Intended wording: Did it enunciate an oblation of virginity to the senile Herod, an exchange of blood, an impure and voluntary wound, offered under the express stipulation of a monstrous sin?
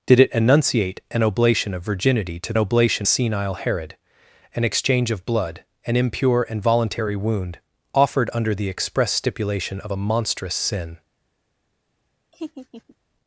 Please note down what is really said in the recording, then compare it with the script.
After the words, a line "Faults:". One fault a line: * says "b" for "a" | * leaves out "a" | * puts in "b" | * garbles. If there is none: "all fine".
Did it enunciate an oblation of virginity to oblation senile Herod, an exchange of blood, an impure and voluntary wound, offered under the express stipulation of a monstrous sin?
Faults:
* says "oblation" for "the"